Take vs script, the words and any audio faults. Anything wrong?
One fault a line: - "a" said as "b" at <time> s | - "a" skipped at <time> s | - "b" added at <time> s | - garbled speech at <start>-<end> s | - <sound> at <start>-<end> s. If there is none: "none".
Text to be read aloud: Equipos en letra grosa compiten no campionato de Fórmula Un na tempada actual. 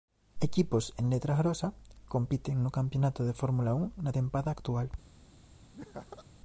- laugh at 5.7-6.3 s